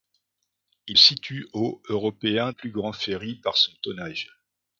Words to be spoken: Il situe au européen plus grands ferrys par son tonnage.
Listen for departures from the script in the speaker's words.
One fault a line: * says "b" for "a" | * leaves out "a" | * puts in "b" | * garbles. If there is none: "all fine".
all fine